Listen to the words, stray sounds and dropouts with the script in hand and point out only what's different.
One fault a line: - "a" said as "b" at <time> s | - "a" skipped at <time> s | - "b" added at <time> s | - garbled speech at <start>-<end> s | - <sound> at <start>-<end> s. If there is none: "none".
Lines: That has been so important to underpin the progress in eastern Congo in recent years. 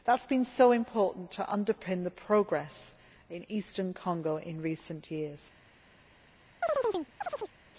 - chirp at 6.6-7.6 s